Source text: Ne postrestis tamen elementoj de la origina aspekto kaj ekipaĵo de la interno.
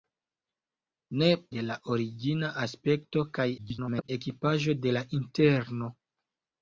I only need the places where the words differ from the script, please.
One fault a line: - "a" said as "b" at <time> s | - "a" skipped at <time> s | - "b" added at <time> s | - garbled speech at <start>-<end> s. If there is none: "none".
- "postrestis tamen elementoj" skipped at 1.2 s
- garbled speech at 3.6-4.1 s